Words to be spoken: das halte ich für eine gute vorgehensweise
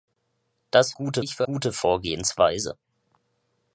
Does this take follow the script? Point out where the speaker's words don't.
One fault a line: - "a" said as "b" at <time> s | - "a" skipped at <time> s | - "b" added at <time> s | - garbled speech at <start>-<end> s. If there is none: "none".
- "halte" said as "gute" at 0.9 s
- "eine" skipped at 1.5 s